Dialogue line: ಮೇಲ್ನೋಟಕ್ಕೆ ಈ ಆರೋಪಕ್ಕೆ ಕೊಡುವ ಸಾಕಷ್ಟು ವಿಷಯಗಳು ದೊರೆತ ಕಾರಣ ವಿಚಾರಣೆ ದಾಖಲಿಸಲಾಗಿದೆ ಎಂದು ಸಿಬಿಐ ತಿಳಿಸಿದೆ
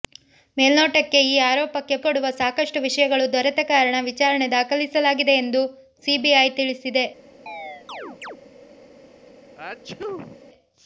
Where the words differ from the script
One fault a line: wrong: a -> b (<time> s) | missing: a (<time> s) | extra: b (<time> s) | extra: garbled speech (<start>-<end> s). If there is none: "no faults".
no faults